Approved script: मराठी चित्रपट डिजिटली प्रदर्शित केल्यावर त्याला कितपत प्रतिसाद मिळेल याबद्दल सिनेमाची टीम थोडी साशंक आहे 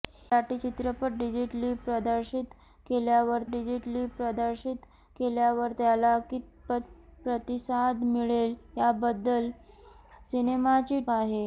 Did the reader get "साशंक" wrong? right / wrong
wrong